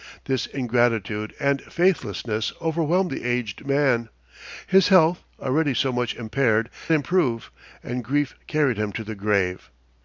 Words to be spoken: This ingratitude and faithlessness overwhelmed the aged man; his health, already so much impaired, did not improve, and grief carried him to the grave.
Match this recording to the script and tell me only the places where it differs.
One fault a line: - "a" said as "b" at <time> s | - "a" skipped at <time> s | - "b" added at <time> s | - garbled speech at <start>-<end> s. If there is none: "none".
- "did not" skipped at 6.7 s